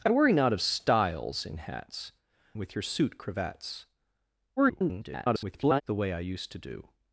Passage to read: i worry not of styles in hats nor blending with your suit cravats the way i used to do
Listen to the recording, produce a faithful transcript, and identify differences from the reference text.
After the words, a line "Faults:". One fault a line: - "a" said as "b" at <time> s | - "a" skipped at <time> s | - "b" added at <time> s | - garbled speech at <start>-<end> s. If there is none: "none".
i worry not of styles in hats with your suit cravats [garbled] the way i used to do
Faults:
- "nor blending" skipped at 2.1 s
- garbled speech at 4.6-5.8 s